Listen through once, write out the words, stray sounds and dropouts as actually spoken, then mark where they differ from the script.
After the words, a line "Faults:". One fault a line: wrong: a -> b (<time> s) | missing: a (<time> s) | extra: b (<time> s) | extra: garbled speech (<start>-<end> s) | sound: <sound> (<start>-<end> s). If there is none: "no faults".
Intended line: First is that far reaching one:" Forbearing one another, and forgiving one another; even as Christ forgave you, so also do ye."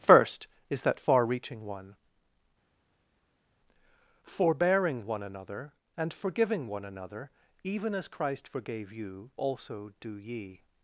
First is that far reaching one:" Forbearing one another, and forgiving one another; even as Christ forgave you, also do ye."
Faults:
missing: so (9.3 s)